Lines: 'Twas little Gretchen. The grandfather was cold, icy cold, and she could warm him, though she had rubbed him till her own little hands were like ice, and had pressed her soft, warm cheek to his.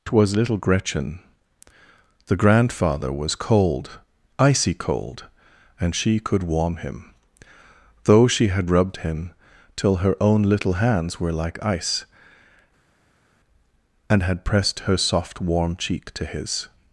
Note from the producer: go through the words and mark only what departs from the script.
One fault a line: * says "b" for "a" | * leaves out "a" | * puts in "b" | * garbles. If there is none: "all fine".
all fine